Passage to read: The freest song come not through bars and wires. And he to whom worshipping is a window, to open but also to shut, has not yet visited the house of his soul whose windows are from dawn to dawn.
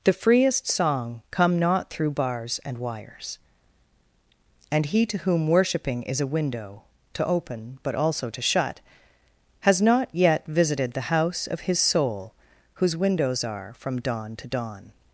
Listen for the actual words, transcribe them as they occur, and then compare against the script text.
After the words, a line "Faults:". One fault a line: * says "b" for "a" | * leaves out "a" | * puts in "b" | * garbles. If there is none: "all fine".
The freest song come not through bars and wires. And he to whom worshipping is a window, to open but also to shut, has not yet visited the house of his soul whose windows are from dawn to dawn.
Faults:
all fine